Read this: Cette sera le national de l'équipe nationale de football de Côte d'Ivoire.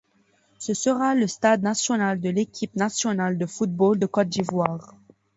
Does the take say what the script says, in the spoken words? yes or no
no